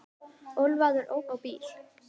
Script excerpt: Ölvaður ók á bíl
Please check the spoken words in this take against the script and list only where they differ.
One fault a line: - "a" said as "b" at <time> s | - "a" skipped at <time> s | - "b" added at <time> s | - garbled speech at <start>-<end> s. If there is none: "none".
none